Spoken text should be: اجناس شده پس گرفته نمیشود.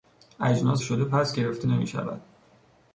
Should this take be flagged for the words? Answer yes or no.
no